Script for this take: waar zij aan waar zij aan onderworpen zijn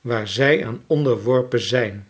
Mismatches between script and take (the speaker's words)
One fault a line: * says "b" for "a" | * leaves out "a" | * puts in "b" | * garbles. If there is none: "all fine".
* leaves out "waar zij aan"